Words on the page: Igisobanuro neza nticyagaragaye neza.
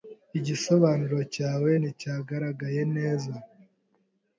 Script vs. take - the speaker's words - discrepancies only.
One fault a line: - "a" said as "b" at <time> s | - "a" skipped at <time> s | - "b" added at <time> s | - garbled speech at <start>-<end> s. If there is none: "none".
- "neza" said as "cyawe" at 1.3 s